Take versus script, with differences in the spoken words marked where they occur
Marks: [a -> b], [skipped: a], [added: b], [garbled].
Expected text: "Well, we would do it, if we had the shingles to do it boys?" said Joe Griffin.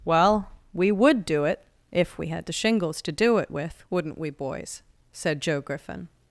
"Well, we would do it, if we had the shingles to do it [added: with wouldn't we] boys?" said Joe Griffin.